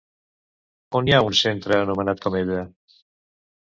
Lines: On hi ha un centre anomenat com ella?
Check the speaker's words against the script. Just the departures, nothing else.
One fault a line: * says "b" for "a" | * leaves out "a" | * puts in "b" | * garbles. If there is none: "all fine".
all fine